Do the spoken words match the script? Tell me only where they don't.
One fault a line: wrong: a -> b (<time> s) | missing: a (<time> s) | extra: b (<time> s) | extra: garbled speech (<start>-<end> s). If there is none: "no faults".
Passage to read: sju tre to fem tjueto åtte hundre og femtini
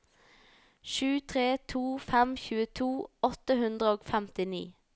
no faults